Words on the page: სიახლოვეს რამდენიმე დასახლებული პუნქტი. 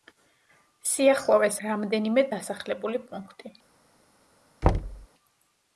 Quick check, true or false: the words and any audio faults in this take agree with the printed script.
false